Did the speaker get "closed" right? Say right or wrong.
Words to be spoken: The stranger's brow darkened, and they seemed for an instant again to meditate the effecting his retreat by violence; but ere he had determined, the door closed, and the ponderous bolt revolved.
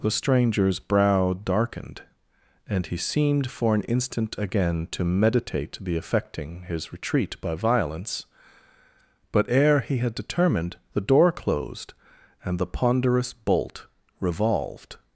right